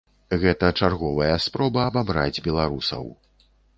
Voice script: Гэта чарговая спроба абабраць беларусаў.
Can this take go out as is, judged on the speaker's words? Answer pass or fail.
pass